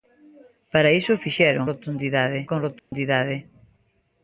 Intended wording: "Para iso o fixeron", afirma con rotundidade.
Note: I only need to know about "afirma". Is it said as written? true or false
false